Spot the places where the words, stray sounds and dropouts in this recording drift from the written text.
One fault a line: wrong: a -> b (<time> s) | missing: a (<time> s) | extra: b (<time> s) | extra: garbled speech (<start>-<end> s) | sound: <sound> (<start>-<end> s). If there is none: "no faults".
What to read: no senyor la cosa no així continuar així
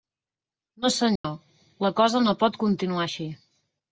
sound: dropout (1.2-1.2 s)
wrong: així -> pot (2.5 s)